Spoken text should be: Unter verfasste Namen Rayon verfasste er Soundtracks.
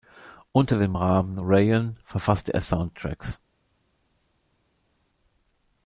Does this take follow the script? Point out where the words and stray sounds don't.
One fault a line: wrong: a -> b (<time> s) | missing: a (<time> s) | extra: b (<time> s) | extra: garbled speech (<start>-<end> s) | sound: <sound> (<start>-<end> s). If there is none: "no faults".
wrong: verfasste -> dem (0.8 s)